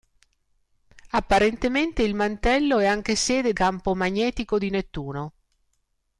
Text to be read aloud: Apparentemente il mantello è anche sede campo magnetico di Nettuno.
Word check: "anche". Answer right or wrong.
right